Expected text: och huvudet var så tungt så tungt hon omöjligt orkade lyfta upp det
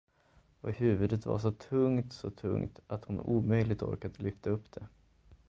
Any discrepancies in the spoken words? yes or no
yes